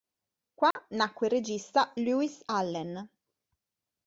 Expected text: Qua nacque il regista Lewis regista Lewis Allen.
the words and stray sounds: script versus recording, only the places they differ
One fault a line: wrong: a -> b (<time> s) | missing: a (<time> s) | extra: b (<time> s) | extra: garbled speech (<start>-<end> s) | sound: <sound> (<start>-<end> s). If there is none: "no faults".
sound: dropout (0.7-0.8 s)
missing: regista Lewis (2.4 s)